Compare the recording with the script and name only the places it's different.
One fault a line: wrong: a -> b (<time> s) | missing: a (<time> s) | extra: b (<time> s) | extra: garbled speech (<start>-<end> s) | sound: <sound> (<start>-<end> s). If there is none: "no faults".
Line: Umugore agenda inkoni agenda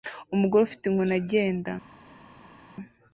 wrong: agenda -> ufite (0.6 s)